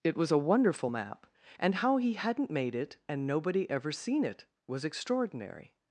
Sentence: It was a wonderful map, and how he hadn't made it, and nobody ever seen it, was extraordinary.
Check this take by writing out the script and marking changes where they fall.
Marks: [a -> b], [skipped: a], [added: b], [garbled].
It was a wonderful map, and how he hadn't made it, and nobody ever seen it, was extraordinary.